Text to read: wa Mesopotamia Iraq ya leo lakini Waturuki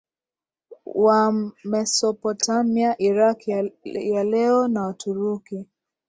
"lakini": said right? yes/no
no